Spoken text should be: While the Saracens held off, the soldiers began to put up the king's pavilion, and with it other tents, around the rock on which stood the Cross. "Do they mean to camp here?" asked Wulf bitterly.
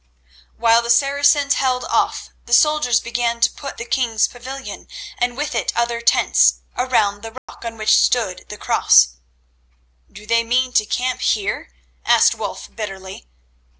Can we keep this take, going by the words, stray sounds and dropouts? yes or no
no